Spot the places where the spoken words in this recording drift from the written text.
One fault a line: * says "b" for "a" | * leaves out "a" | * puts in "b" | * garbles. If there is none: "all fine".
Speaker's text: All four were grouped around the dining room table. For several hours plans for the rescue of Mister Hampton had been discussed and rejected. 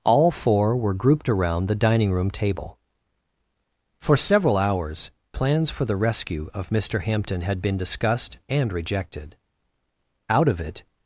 * puts in "Out of it"